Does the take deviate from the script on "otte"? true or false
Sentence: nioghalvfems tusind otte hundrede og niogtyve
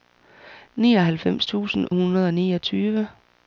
true